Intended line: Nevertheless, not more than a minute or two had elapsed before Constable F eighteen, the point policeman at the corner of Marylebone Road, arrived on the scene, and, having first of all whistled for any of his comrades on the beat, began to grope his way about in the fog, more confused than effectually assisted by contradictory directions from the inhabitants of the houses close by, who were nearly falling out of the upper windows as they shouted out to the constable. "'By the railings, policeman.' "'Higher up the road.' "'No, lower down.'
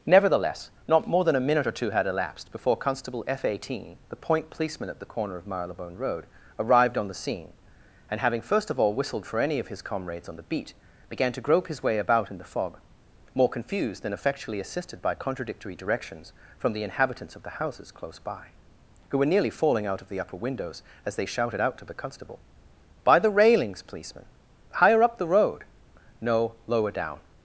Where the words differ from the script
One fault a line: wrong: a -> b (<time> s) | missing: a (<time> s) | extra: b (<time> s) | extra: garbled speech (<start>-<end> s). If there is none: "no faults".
no faults